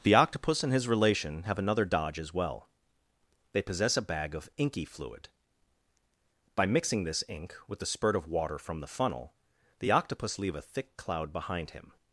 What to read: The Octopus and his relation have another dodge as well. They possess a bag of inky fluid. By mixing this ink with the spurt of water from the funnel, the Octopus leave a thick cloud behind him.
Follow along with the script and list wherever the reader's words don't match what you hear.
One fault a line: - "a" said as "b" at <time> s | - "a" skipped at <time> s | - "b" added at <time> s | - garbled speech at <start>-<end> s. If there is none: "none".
none